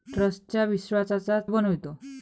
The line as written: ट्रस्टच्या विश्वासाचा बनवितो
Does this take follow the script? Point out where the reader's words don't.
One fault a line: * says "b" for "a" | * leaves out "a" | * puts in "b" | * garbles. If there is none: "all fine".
all fine